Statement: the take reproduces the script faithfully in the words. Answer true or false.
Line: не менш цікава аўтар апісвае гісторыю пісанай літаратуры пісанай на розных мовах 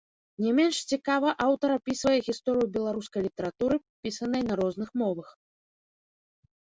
false